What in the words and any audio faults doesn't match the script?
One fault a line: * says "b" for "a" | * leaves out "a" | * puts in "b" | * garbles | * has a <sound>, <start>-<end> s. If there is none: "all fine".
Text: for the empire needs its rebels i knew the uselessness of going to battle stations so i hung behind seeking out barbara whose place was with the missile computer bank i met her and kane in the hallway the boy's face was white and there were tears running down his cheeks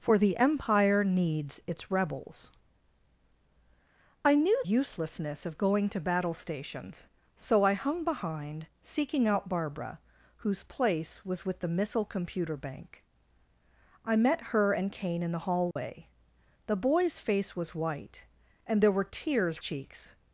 * leaves out "the"
* has a dropout, 15.7-15.8 s
* leaves out "running down his"